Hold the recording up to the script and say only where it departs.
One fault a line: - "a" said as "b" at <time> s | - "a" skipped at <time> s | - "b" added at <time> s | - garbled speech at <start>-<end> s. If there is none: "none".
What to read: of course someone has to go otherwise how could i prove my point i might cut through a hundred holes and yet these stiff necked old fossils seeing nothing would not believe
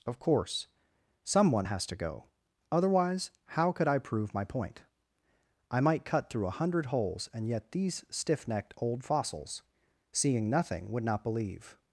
none